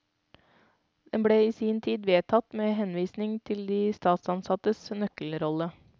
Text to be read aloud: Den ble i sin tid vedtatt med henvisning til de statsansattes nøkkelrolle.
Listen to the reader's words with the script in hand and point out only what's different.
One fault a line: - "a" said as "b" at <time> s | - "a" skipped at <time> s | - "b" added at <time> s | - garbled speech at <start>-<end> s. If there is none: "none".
none